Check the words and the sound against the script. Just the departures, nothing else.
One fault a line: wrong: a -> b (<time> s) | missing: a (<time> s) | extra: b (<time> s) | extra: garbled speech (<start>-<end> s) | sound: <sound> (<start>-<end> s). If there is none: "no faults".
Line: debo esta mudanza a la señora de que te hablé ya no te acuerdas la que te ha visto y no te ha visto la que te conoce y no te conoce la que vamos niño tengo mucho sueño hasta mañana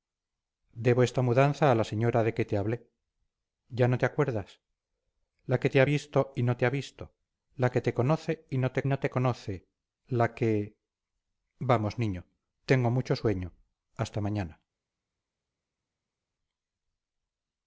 extra: no te (8.9 s)